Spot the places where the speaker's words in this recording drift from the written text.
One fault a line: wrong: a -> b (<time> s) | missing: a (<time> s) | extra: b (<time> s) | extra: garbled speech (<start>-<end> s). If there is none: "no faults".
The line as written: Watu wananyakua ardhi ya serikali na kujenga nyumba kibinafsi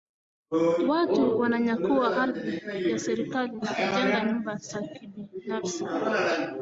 extra: za (4.5 s)